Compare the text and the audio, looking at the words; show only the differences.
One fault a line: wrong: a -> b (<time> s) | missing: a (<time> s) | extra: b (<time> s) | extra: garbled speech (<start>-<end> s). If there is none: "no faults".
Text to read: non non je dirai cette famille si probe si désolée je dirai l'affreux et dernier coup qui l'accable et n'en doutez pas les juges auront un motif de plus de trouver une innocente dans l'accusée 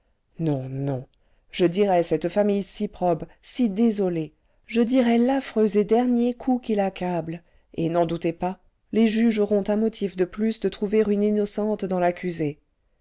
no faults